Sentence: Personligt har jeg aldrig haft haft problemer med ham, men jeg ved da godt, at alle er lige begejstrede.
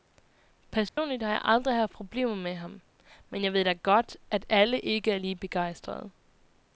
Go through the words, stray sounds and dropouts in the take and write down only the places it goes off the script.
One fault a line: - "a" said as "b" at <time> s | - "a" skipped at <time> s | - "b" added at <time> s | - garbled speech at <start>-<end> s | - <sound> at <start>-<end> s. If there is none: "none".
- dropout at 0.9-1.0 s
- "haft" skipped at 1.9 s
- "ikke" added at 4.8 s